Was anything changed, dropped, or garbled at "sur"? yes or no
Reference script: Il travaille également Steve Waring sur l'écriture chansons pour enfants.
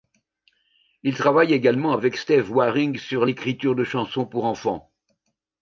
no